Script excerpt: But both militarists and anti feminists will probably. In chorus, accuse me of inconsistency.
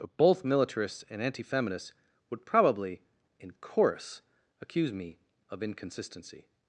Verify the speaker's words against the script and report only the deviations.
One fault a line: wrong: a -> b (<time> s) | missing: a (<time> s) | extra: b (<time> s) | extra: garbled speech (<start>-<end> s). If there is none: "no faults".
wrong: will -> would (2.3 s)